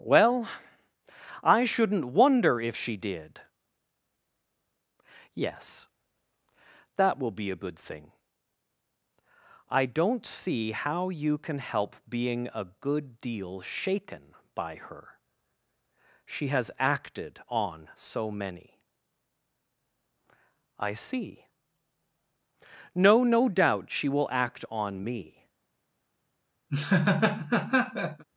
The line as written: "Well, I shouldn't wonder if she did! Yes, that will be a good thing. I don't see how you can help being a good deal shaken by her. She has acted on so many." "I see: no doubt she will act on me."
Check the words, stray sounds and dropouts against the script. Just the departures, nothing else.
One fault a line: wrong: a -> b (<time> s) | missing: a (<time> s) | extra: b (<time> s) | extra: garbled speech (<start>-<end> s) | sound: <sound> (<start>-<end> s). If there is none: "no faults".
extra: no (23.2 s)
sound: laugh (26.7-28.2 s)